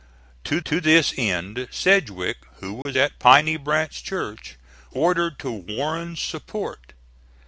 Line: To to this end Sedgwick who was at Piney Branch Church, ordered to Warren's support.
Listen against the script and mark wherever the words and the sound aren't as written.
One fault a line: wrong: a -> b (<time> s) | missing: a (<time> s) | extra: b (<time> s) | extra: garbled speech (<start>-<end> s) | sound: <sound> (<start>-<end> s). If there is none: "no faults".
sound: dropout (2.8-2.9 s)